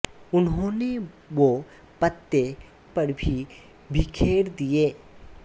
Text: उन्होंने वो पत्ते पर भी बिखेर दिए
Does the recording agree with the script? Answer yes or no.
yes